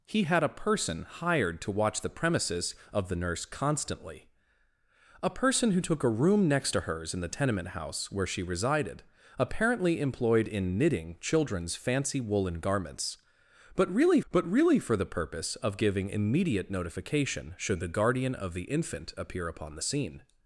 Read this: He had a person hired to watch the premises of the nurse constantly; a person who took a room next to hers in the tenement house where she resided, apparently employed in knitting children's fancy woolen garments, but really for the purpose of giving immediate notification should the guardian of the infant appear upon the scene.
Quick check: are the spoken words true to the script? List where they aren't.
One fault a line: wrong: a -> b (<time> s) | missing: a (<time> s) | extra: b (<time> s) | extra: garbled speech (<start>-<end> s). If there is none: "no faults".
extra: but really (14.3 s)